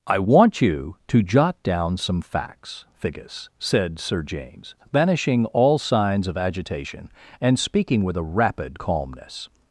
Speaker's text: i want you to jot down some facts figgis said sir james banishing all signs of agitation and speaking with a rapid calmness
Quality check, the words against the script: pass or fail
pass